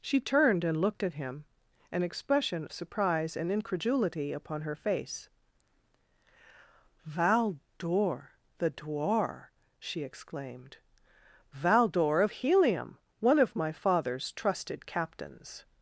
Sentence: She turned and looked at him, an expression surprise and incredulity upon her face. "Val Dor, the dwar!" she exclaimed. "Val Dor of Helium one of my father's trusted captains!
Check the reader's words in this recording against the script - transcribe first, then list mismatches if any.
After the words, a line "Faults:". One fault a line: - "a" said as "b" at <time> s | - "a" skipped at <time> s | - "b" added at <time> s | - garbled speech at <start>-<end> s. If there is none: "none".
She turned and looked at him, an expression surprise and incredulity upon her face. "Val Dor, the dwar!" she exclaimed. "Val Dor of Helium one of my father's trusted captains!
Faults:
none